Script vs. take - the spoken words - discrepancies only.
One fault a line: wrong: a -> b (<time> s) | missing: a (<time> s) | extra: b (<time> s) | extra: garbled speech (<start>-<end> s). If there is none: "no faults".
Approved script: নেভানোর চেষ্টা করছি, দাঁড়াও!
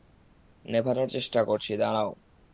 no faults